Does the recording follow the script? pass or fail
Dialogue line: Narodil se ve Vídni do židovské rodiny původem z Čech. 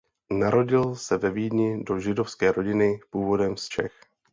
pass